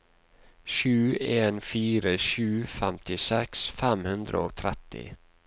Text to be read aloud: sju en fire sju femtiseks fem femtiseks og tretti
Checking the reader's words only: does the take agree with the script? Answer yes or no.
no